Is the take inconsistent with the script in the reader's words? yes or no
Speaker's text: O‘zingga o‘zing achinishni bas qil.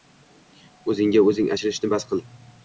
no